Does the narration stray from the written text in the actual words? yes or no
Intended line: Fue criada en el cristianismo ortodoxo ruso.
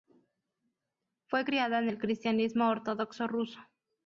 no